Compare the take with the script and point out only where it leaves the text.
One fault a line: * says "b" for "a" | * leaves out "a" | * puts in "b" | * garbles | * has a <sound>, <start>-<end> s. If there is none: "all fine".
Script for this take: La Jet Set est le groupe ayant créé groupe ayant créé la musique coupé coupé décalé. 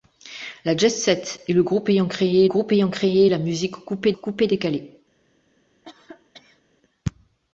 * has a cough, 5.8-6.6 s